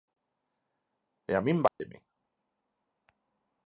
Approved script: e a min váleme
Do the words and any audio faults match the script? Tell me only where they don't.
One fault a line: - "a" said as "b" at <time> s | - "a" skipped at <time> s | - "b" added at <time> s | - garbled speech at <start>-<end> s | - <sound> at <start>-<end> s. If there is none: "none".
- dropout at 1.7-1.8 s